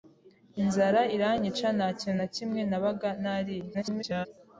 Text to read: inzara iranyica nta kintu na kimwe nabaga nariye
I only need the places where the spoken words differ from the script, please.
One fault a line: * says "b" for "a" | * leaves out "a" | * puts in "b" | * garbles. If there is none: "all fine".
* garbles